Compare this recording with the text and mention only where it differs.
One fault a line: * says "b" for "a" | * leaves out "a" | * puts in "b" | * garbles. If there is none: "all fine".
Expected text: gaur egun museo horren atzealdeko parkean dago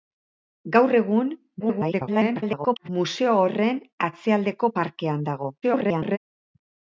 * garbles
* garbles